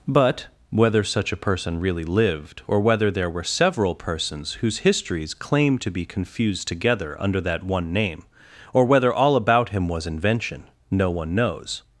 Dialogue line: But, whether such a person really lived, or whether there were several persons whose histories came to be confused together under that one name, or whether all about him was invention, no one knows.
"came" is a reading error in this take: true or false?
true